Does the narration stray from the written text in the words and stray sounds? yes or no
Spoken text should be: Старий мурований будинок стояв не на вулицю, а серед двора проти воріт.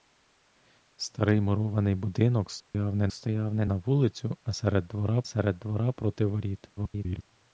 yes